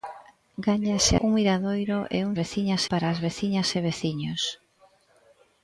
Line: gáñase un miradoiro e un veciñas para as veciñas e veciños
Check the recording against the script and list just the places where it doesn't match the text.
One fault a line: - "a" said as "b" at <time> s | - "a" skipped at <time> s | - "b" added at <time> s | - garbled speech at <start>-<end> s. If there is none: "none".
none